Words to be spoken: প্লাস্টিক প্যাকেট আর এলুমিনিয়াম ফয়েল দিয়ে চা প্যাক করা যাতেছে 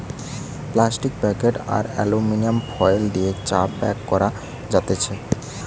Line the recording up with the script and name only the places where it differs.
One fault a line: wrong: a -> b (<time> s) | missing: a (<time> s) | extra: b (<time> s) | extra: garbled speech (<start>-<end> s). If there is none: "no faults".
no faults